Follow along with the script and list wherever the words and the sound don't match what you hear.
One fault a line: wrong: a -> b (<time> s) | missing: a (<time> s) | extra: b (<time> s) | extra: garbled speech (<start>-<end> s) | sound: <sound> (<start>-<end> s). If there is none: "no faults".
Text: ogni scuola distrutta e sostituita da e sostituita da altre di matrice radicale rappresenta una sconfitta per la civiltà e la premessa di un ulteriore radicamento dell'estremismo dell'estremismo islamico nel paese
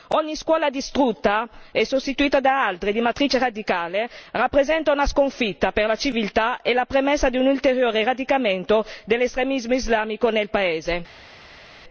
missing: e sostituita da (2.6 s)
missing: dell'estremismo (9.7 s)